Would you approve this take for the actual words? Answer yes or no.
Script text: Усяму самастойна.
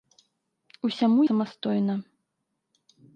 yes